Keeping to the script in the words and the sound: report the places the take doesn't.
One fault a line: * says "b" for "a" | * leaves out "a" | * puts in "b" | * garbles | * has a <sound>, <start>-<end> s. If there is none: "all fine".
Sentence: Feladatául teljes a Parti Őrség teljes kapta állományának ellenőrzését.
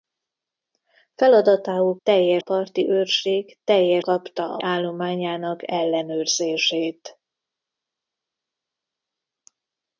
all fine